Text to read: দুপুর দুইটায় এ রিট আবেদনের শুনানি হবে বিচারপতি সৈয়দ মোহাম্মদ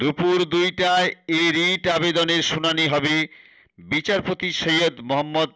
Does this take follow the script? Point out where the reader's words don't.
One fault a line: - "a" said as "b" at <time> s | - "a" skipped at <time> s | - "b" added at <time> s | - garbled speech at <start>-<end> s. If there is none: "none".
none